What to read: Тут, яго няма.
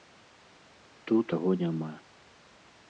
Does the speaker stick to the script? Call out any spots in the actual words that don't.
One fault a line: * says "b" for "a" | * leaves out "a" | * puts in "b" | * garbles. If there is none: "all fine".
all fine